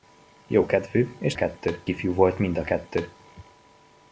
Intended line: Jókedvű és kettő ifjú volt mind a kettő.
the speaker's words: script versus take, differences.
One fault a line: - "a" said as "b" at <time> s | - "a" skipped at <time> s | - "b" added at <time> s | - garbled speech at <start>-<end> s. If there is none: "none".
none